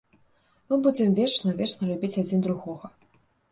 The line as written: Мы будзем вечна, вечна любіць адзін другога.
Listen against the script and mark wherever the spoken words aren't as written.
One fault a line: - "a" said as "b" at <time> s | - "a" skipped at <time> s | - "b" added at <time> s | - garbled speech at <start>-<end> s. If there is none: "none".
none